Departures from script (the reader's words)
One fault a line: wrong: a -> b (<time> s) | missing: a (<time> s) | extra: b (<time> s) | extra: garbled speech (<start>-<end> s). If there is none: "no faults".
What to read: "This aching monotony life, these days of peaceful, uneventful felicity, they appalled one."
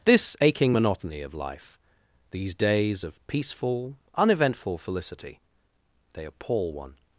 extra: of (1.2 s)
wrong: appalled -> appall (6.2 s)